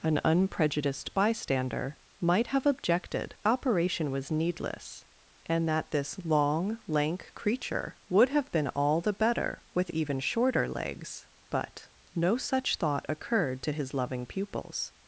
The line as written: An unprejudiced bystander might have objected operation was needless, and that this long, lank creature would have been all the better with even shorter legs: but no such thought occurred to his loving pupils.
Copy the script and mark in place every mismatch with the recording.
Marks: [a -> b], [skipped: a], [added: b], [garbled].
An unprejudiced bystander might have objected operation was needless, and that this long, lank creature would have been all the better with even shorter legs: but no such thought occurred to his loving pupils.